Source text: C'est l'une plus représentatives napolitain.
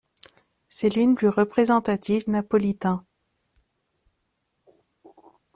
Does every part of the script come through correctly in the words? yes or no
yes